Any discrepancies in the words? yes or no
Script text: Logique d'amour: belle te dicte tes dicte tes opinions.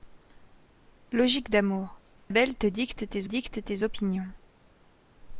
no